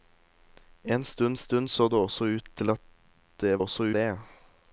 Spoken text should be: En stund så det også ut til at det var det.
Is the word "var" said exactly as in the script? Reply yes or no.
no